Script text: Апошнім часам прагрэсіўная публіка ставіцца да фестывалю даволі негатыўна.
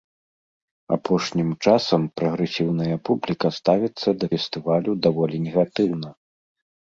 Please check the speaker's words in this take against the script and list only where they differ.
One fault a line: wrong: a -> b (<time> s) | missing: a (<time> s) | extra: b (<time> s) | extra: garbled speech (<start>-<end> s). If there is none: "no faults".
no faults